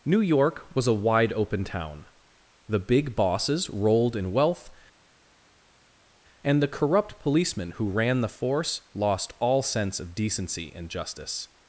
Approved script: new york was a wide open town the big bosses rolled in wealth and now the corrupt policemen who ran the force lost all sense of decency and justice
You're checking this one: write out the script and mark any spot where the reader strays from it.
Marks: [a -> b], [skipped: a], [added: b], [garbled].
new york was a wide open town the big bosses rolled in wealth and [skipped: now] the corrupt policemen who ran the force lost all sense of decency and justice